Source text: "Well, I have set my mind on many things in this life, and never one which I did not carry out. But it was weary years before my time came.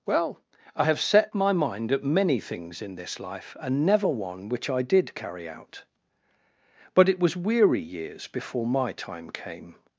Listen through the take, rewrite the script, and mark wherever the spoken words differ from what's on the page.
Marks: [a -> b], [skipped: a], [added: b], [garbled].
"Well, I have set my mind [on -> at] many things in this life, and never one which I did [skipped: not] carry out. But it was weary years before my time came.